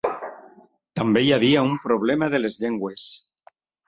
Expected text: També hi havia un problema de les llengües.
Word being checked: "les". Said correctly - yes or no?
yes